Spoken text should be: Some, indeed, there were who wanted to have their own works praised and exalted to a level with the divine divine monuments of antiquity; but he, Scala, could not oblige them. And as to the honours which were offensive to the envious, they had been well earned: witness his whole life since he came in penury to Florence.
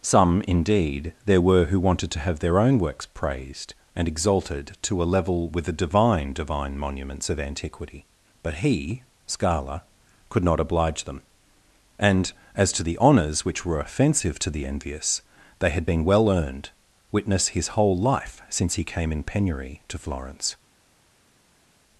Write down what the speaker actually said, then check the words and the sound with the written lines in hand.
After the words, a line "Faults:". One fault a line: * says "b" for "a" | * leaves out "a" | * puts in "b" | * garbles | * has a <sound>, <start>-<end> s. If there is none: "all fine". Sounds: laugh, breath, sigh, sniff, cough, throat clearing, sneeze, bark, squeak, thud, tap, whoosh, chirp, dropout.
Some, indeed, there were who wanted to have their own works praised and exalted to a level with the divine divine monuments of antiquity; but he, Scala, could not oblige them. And as to the honours which were offensive to the envious, they had been well earned: witness his whole life since he came in penury to Florence.
Faults:
all fine